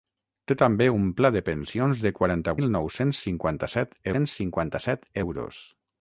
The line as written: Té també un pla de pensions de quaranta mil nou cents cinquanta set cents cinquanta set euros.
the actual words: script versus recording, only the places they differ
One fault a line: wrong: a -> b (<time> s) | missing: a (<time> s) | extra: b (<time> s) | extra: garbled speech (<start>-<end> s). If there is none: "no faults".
no faults